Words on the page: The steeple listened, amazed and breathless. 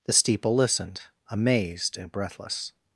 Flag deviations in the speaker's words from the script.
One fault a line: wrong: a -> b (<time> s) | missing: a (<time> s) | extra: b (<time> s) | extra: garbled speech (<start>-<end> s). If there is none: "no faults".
no faults